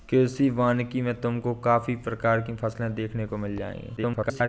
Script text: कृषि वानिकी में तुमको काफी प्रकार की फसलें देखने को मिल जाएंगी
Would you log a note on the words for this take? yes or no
yes